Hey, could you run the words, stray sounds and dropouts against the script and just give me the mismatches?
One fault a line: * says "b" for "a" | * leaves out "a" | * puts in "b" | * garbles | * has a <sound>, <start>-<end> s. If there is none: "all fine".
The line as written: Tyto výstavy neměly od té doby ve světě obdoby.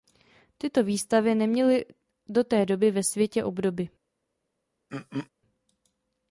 * says "do" for "od"
* has a throat clearing, 4.9-5.3 s